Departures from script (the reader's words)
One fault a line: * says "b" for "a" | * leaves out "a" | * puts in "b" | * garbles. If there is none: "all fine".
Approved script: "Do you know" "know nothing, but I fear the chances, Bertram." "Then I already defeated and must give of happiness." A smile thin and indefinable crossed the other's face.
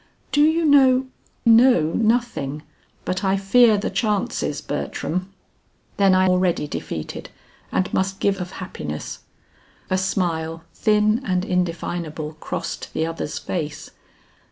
all fine